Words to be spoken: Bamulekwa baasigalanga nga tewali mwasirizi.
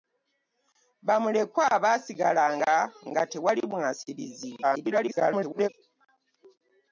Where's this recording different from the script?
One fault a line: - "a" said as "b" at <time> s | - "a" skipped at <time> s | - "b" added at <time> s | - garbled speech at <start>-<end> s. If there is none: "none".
- garbled speech at 4.6-5.7 s